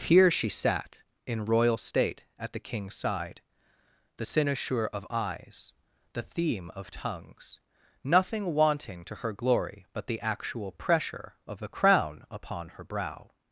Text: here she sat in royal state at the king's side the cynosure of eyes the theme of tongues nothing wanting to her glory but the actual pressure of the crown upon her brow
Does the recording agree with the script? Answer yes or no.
yes